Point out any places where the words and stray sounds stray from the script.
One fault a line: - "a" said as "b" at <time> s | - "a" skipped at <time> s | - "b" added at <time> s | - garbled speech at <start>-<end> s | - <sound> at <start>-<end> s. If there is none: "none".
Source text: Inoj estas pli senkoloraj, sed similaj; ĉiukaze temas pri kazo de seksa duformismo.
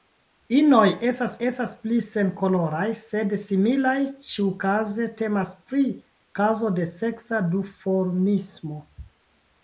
- "estas" added at 1.5 s